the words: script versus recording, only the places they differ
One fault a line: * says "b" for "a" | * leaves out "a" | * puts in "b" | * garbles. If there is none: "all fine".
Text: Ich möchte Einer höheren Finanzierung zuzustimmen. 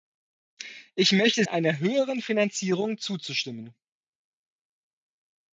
all fine